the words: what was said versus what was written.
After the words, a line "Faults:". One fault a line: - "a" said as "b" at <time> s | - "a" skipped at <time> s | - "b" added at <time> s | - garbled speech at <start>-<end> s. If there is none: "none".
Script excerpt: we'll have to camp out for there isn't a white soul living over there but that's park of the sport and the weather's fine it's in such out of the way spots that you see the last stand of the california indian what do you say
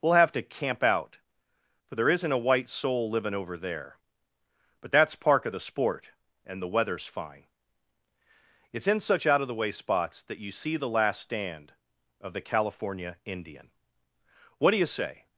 we'll have to camp out for there isn't a white soul living over there but that's park of the sport and the weather's fine it's in such out of the way spots that you see the last stand of the california indian what do you say
Faults:
none